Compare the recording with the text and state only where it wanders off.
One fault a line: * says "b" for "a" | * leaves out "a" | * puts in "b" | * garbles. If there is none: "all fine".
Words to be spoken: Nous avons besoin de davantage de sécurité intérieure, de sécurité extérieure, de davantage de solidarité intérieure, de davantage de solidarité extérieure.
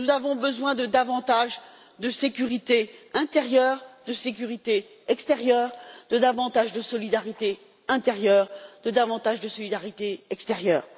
all fine